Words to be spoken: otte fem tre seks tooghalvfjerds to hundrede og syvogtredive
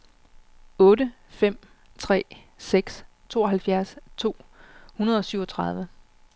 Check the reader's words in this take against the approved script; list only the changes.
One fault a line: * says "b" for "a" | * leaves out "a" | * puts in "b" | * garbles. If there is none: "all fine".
all fine